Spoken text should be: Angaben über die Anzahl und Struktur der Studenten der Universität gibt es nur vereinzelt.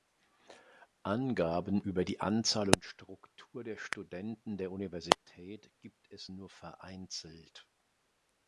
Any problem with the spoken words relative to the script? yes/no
no